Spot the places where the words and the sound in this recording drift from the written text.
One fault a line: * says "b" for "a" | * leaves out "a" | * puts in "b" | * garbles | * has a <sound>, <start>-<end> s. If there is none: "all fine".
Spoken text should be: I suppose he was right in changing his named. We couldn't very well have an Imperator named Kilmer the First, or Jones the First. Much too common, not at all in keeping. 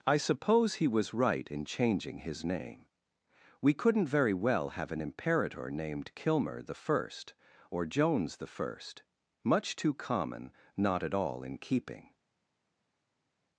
* says "name" for "named"